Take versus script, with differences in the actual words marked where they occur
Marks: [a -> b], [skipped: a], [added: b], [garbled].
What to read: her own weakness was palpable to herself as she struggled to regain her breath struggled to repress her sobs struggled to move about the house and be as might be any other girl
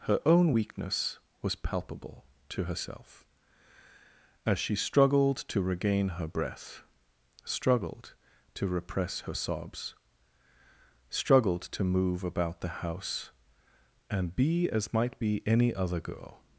her own weakness was palpable to herself as she struggled to regain her breath struggled to repress her sobs struggled to move about the house and be as might be any other girl